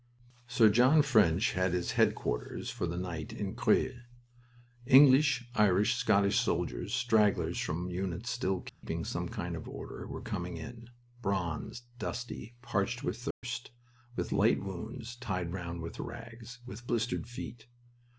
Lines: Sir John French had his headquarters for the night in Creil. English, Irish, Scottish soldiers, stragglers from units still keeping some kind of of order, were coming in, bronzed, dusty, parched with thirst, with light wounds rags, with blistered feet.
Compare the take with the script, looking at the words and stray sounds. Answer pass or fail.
fail